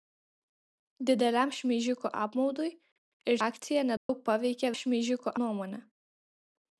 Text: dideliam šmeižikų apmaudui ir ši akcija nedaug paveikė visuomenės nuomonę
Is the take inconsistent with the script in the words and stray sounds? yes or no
yes